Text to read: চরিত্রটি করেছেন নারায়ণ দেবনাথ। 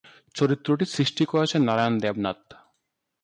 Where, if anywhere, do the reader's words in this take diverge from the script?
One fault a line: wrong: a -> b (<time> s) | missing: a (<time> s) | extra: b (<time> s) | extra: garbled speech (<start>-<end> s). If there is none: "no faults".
extra: সৃষ্টি (0.8 s)